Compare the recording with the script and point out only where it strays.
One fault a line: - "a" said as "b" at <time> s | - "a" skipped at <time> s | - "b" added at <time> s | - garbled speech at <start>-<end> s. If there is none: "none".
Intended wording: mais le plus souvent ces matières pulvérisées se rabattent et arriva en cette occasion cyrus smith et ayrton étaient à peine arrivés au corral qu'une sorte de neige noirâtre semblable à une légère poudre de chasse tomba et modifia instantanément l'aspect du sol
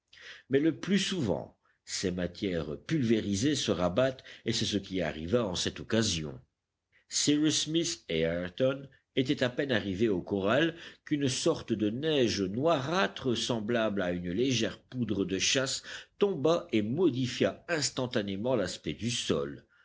- "c'est ce qui" added at 4.5 s